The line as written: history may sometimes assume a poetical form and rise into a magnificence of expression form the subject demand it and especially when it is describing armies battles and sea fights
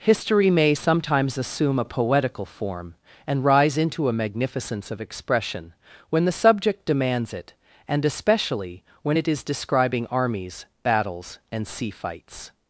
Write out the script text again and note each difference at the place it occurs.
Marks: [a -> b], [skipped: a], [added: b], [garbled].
history may sometimes assume a poetical form and rise into a magnificence of expression [form -> when] the subject [demand -> demands] it and especially when it is describing armies battles and sea fights